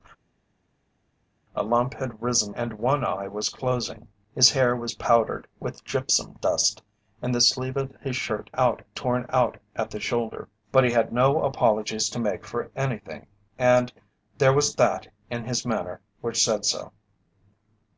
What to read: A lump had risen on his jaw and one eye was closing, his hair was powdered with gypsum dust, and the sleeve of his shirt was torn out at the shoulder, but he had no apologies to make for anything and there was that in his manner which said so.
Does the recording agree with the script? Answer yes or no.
no